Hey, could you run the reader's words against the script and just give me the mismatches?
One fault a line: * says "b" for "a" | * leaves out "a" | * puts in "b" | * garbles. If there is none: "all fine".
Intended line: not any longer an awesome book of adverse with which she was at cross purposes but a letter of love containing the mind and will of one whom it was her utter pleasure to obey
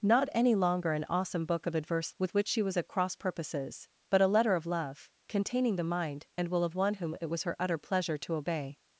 all fine